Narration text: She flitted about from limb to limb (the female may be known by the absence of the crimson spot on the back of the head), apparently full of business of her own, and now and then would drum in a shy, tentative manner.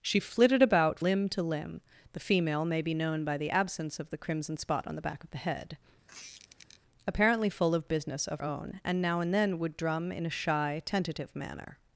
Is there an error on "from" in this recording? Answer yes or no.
yes